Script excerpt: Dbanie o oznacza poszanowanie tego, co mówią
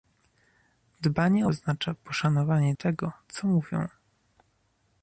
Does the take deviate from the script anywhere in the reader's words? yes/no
no